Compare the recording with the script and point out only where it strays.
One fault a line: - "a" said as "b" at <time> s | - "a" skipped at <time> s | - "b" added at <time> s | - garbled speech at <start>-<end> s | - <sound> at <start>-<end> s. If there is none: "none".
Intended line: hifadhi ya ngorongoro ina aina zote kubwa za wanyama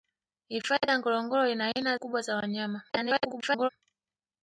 - "zote" skipped at 2.0 s
- garbled speech at 2.9-3.7 s